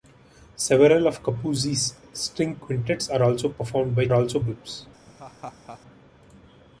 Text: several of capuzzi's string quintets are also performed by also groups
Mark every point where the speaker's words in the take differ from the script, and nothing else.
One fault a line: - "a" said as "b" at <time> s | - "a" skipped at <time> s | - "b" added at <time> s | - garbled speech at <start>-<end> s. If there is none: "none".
none